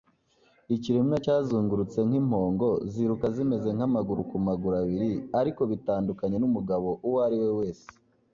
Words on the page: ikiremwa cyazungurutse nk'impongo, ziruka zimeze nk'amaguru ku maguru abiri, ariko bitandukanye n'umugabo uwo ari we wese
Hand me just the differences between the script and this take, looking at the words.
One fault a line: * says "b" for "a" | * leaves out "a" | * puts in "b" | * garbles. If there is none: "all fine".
all fine